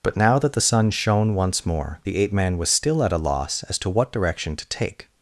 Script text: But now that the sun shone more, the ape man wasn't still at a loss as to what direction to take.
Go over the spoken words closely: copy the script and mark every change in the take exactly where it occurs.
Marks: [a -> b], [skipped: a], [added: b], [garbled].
But now that the sun shone [added: once] more, the ape man [wasn't -> was] still at a loss as to what direction to take.